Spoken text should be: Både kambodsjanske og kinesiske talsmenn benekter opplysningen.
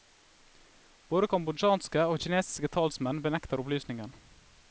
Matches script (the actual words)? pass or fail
pass